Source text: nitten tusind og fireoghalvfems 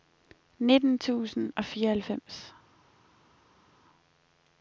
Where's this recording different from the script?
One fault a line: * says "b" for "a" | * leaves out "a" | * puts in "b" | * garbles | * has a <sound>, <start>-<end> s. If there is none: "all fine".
all fine